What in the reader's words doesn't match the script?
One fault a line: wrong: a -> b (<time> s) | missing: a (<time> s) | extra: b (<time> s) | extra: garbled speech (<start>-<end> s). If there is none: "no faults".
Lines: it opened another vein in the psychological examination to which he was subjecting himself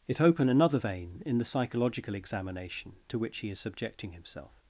wrong: opened -> open (0.2 s)
wrong: was -> is (3.5 s)